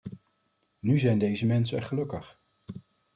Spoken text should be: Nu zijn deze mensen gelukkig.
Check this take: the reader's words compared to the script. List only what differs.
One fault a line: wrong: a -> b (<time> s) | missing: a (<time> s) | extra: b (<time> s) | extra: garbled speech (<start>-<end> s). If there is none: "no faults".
no faults